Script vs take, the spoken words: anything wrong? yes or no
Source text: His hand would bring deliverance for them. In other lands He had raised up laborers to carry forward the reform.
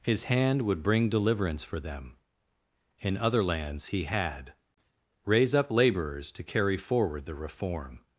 yes